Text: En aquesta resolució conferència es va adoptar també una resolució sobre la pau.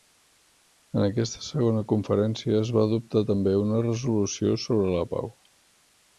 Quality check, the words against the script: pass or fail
fail